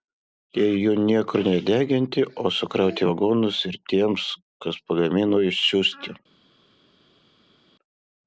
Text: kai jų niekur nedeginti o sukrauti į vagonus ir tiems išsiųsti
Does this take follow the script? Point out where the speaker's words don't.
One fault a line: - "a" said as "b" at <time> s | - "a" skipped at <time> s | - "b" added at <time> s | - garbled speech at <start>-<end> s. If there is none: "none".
- "kai" said as "jei" at 0.6 s
- "kas pagamino" added at 4.7 s